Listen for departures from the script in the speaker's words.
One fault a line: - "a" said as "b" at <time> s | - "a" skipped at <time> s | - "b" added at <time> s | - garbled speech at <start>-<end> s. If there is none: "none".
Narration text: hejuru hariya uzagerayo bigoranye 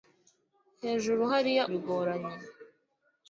- "uzagerayo" skipped at 1.6 s